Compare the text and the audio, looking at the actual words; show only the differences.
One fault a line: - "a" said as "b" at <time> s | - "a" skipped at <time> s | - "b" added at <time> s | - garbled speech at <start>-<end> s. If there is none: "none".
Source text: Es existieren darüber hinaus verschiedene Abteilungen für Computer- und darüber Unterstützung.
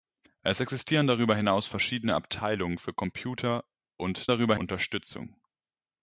none